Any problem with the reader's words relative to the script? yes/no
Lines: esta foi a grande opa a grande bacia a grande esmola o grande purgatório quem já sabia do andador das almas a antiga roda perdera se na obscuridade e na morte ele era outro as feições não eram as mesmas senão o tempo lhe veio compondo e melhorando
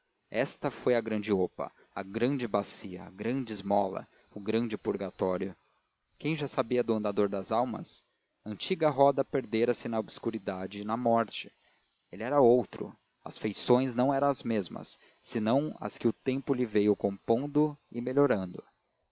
yes